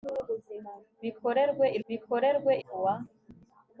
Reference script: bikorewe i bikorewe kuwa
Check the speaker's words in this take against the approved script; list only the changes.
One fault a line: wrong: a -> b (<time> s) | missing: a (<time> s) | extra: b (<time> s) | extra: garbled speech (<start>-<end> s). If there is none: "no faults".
no faults